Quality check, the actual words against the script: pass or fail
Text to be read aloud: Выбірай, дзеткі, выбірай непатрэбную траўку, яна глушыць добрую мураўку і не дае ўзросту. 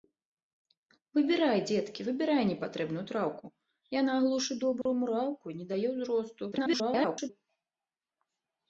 fail